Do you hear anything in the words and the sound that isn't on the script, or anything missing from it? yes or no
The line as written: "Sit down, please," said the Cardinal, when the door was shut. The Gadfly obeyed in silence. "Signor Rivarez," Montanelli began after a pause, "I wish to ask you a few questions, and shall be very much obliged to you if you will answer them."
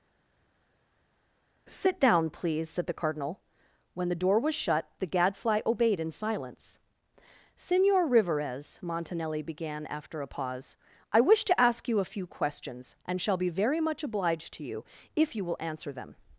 no